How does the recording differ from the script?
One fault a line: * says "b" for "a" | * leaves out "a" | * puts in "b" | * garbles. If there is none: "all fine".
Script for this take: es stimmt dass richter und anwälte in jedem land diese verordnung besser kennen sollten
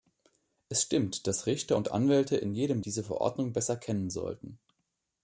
* leaves out "land"